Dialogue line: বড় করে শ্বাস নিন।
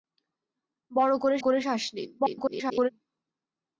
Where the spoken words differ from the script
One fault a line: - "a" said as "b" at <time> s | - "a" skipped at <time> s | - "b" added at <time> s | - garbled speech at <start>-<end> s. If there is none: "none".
- "করে" added at 1.4 s
- garbled speech at 2.2-2.9 s